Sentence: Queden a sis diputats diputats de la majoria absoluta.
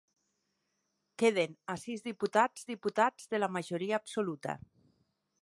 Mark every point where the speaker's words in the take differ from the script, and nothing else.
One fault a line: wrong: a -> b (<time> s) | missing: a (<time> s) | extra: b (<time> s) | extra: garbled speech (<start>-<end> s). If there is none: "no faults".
no faults